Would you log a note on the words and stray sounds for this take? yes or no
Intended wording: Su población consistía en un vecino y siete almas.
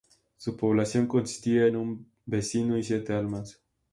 no